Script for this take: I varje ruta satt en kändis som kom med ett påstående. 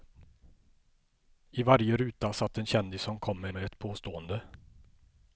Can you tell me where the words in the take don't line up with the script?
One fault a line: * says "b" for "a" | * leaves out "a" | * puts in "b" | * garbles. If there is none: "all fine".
* puts in "med"